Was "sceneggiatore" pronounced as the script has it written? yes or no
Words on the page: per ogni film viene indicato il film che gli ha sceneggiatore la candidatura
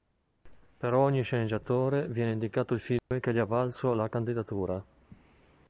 no